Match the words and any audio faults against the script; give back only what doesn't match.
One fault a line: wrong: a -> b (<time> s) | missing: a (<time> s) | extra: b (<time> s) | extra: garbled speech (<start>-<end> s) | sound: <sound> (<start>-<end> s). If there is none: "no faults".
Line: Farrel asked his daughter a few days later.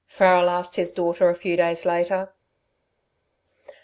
no faults